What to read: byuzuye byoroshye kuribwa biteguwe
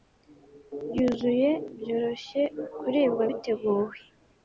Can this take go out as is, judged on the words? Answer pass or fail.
pass